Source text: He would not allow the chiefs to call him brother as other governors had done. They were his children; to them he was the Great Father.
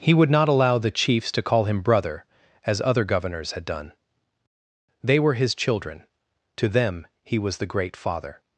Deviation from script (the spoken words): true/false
false